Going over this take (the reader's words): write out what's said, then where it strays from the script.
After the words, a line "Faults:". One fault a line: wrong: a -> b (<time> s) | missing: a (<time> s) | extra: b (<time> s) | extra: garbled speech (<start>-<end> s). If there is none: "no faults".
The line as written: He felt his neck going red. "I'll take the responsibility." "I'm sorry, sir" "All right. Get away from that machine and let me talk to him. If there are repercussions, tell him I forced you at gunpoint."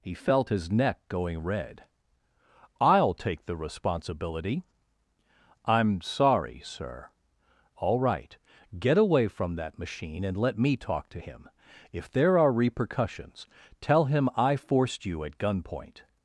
He felt his neck going red. "I'll take the responsibility." "I'm sorry, sir" "All right. Get away from that machine and let me talk to him. If there are repercussions, tell him I forced you at gunpoint."
Faults:
no faults